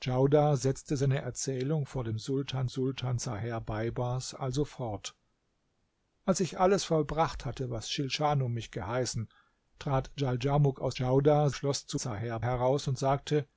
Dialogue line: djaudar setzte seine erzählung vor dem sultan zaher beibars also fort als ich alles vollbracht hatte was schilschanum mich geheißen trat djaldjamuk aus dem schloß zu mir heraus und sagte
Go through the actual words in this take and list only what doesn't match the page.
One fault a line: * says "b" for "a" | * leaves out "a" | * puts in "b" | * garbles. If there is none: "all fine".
* puts in "sultan"
* says "djaudar" for "dem"
* says "zaher" for "mir"